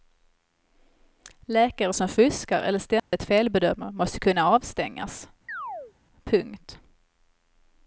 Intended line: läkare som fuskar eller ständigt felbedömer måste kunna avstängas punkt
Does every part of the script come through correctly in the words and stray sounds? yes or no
no